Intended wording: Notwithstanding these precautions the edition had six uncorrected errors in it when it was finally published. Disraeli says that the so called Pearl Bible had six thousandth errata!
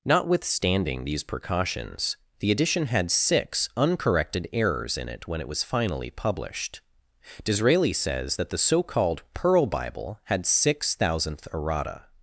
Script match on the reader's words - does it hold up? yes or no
yes